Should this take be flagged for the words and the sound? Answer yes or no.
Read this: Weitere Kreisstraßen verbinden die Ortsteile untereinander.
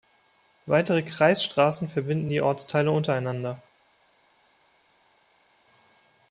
no